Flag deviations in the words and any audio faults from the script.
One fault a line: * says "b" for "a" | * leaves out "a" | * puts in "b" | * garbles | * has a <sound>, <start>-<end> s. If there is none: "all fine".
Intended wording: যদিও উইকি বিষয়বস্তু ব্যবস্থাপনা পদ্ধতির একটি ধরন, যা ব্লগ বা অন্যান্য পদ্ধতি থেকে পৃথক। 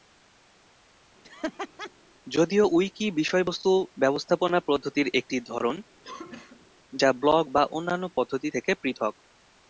* has a laugh, 1.2-1.9 s
* has a cough, 6.0-6.7 s